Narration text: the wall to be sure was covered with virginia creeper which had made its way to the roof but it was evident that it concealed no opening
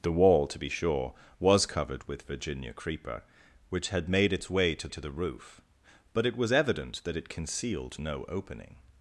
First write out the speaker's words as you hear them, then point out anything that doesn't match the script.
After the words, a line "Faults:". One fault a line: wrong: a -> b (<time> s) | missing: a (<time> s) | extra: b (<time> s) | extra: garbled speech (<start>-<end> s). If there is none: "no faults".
the wall to be sure was covered with virginia creeper which had made its way to to the roof but it was evident that it concealed no opening
Faults:
extra: to (4.9 s)